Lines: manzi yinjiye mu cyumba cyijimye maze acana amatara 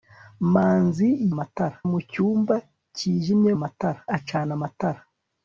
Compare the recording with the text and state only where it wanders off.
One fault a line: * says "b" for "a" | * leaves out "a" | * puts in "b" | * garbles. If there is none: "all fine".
* says "amatara" for "yinjiye"
* says "amatara" for "maze"